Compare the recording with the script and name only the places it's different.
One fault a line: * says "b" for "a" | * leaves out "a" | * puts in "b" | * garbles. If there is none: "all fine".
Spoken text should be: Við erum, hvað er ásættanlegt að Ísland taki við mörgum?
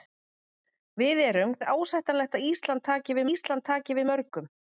* leaves out "hvað"
* puts in "Ísland taki við"